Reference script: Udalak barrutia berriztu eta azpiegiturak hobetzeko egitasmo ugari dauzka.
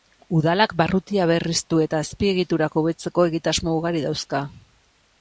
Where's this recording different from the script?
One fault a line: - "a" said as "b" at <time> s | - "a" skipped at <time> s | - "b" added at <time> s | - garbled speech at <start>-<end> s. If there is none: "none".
none